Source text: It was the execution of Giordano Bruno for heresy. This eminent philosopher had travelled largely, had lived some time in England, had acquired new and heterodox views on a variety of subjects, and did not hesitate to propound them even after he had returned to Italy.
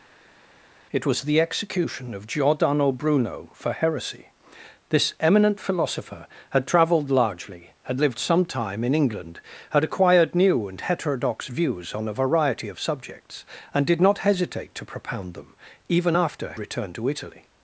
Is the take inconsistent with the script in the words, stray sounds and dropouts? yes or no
yes